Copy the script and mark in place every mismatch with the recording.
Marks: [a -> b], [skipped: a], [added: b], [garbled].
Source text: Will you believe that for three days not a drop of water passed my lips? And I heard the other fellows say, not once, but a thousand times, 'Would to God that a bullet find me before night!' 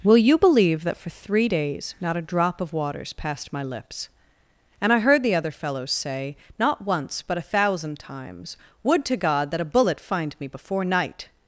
Will you believe that for three days not a drop of [water -> waters] passed my lips? And I heard the other fellows say, not once, but a thousand times, 'Would to God that a bullet find me before night!'